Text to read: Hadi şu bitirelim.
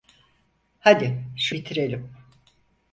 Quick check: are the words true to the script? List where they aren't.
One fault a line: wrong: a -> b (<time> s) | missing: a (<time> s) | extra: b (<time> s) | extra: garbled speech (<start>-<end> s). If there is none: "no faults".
no faults